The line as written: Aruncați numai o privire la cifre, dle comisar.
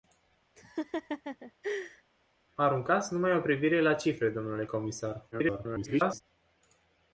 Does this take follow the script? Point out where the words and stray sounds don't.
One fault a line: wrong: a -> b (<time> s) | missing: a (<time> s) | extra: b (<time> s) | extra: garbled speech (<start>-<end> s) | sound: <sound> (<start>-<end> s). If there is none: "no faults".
sound: laugh (0.6-2.0 s)
extra: garbled speech (5.3-6.2 s)